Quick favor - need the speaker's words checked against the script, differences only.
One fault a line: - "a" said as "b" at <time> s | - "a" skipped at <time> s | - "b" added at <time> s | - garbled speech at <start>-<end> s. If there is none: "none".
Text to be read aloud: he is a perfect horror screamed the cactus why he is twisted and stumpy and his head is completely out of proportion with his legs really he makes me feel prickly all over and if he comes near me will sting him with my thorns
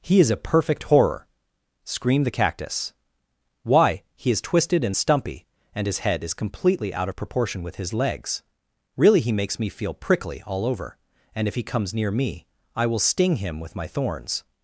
- "i" added at 12.7 s